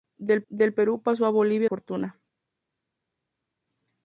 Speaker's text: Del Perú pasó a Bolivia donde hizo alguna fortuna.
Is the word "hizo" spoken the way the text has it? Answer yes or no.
no